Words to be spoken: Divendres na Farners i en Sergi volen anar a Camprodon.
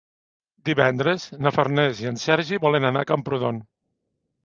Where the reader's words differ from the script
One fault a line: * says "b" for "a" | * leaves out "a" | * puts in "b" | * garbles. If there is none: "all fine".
all fine